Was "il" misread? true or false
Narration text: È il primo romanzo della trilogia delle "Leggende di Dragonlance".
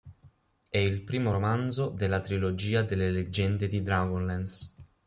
false